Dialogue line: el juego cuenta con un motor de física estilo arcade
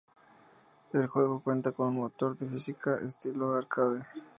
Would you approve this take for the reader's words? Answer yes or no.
yes